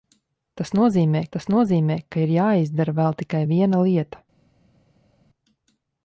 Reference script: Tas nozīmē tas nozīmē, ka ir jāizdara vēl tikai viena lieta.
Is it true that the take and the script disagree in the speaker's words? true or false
false